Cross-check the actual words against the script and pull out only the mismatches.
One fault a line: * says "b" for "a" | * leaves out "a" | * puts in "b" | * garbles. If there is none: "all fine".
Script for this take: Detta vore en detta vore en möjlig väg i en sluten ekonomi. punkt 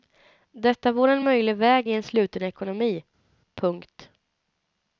* leaves out "detta vore en"